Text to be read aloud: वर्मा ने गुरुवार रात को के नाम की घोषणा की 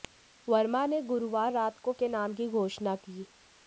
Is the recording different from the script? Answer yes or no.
no